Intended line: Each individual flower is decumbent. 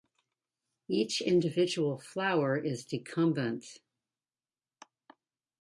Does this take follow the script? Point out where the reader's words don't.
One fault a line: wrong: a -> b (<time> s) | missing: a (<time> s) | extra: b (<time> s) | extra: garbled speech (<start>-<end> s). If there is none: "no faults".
no faults